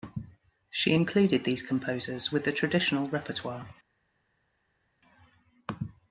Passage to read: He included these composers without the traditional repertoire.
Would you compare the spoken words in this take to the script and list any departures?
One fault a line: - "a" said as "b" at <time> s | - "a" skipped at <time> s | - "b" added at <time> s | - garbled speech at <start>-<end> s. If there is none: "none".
- "He" said as "She" at 0.7 s
- "without" said as "with" at 2.3 s